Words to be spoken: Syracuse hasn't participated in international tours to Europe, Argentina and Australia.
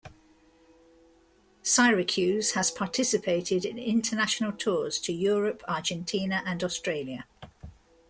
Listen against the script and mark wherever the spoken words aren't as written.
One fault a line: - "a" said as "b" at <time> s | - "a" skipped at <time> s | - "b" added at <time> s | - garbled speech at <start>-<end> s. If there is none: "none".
- "hasn't" said as "has" at 2.5 s